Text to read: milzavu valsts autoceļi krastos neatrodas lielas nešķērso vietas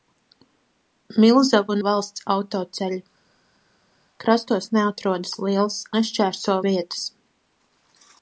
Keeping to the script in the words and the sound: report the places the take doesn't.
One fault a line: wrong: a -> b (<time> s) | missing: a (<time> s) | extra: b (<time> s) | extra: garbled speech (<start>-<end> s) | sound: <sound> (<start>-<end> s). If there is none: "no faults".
no faults